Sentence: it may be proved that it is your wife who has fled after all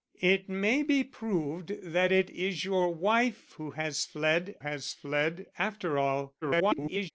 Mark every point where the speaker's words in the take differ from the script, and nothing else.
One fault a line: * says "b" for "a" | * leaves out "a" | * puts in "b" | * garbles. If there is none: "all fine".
* puts in "has fled"
* garbles